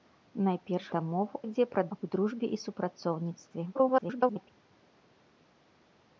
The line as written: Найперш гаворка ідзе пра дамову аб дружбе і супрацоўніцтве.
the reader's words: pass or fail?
fail